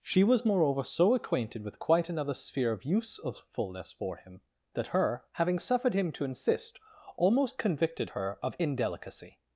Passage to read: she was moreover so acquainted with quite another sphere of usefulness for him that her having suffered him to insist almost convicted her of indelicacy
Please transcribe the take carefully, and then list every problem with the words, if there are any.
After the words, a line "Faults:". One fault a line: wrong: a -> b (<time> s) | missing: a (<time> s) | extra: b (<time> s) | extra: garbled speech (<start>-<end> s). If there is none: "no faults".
she was moreover so acquainted with quite another sphere of usefulness for him that her having suffered him to insist almost convicted her of indelicacy
Faults:
no faults